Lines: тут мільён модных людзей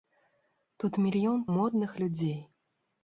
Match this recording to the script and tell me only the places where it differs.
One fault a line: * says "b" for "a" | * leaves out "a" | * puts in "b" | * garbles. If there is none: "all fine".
all fine